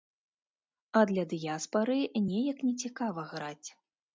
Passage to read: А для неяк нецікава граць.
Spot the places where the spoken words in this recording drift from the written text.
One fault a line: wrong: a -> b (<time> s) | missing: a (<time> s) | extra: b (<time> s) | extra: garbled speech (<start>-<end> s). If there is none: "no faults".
extra: дыяспары (1.4 s)